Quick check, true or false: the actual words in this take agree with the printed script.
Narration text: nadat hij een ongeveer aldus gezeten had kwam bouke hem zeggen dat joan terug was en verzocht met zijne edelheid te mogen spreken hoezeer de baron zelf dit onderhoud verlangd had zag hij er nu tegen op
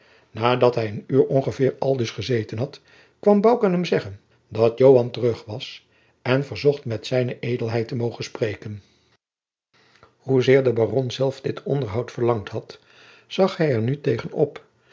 false